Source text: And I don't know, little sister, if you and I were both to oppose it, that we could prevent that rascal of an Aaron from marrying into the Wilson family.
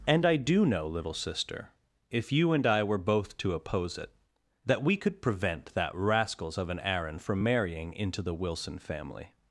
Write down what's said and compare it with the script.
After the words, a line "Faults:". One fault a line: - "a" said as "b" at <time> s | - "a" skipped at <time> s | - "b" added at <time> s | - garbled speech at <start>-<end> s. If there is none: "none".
And I do know, little sister, if you and I were both to oppose it, that we could prevent that rascals of an Aaron from marrying into the Wilson family.
Faults:
- "don't" said as "do" at 0.3 s
- "rascal" said as "rascals" at 5.9 s